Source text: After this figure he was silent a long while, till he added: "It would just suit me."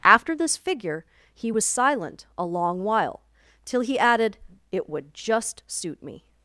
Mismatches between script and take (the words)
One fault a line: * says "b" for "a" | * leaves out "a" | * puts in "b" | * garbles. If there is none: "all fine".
all fine